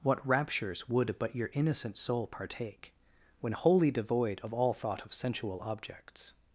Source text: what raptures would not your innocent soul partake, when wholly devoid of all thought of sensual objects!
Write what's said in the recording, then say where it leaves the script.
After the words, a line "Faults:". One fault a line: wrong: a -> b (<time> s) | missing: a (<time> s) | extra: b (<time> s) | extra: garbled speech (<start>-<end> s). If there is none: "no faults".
what raptures would but your innocent soul partake, when wholly devoid of all thought of sensual objects!
Faults:
wrong: not -> but (1.2 s)